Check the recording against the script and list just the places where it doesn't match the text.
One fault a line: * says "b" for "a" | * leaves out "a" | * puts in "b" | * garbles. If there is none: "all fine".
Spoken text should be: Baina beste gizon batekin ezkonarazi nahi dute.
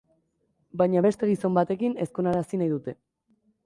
all fine